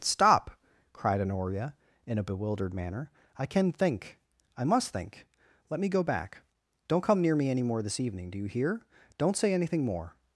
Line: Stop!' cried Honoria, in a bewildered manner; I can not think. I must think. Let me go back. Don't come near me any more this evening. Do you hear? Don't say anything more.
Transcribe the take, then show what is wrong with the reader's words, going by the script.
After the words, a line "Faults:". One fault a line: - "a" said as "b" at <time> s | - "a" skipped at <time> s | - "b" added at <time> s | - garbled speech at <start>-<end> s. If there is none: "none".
Stop!' cried Honoria, in a bewildered manner; I can think. I must think. Let me go back. Don't come near me any more this evening. Do you hear? Don't say anything more.
Faults:
- "not" skipped at 3.7 s